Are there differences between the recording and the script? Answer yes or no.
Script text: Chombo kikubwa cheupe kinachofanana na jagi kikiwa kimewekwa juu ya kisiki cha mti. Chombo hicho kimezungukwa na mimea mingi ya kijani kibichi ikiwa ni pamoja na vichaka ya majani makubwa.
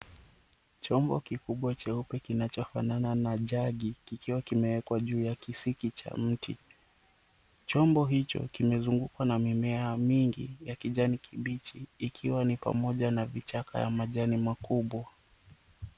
no